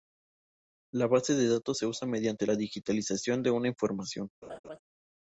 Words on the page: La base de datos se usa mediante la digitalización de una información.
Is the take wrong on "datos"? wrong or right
right